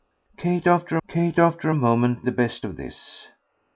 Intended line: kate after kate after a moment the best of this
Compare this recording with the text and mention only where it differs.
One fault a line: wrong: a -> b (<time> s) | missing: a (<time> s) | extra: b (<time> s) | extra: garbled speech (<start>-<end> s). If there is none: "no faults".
no faults